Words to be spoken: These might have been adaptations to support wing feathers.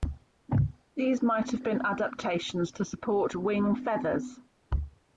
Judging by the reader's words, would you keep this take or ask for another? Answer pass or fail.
pass